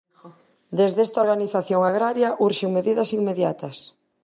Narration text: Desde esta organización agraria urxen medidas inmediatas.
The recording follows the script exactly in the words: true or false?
true